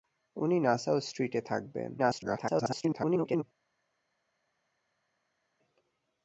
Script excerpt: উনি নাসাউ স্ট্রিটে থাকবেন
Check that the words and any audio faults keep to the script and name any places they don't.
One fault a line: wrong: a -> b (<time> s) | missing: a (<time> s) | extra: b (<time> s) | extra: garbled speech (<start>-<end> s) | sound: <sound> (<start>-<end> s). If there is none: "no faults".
extra: garbled speech (2.0-3.4 s)